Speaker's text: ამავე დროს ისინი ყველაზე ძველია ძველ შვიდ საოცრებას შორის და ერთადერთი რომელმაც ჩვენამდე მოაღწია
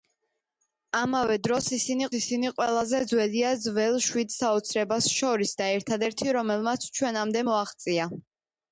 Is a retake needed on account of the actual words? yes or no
yes